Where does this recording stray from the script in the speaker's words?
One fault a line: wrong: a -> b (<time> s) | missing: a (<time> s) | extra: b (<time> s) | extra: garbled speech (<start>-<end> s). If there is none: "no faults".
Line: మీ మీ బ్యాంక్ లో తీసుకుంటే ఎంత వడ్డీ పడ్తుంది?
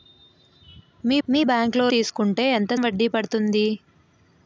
no faults